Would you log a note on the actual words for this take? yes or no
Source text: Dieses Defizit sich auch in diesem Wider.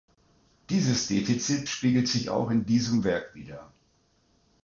yes